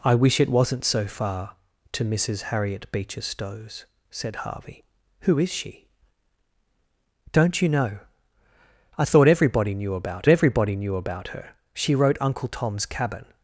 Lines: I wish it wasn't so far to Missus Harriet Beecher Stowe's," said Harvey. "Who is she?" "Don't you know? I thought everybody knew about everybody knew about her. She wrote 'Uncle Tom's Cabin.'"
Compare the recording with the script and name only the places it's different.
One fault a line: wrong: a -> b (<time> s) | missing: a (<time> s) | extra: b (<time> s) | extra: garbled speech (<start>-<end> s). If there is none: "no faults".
no faults